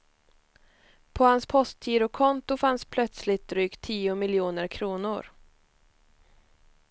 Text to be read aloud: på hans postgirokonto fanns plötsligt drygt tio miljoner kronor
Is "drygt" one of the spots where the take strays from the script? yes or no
no